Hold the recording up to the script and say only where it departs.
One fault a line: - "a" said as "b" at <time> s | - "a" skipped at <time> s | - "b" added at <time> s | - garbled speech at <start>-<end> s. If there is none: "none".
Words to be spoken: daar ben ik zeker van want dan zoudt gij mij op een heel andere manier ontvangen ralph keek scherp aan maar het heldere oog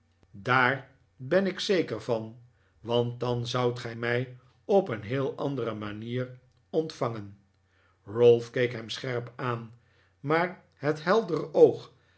- "hem" added at 8.7 s